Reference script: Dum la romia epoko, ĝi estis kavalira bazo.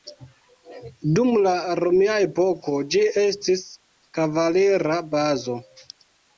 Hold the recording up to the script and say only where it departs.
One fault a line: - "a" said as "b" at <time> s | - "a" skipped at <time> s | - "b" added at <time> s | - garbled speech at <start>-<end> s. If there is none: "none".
none